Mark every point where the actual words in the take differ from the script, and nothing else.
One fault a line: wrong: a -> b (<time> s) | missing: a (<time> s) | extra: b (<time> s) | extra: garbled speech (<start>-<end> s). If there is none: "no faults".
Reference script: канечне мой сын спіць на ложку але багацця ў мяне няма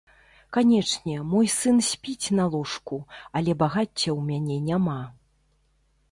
no faults